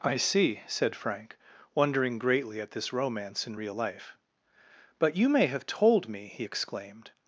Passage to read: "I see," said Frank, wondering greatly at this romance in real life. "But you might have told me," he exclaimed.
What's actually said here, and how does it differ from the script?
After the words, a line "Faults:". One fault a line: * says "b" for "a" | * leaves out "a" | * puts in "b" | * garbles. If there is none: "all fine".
"I see," said Frank, wondering greatly at this romance in real life. "But you may have told me," he exclaimed.
Faults:
* says "may" for "might"